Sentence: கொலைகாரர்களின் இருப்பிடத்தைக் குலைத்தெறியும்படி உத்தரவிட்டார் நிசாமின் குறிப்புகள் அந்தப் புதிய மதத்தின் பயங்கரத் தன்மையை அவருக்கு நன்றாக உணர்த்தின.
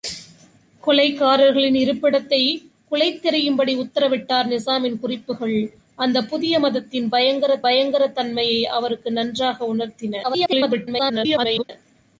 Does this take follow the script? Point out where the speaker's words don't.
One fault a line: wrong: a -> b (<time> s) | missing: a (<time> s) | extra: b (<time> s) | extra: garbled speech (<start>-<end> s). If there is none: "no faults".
extra: பயங்கரத் (7.6 s)
extra: garbled speech (10.2-11.7 s)